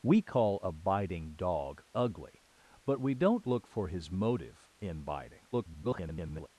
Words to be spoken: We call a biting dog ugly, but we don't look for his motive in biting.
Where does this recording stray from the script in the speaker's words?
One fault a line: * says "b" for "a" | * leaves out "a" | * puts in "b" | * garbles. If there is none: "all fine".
* garbles